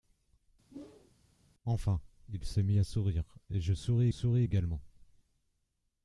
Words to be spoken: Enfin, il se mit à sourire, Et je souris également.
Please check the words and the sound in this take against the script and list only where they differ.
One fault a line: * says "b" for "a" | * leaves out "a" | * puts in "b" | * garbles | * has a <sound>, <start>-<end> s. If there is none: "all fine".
* has a whoosh, 0.7-1.1 s
* puts in "souris"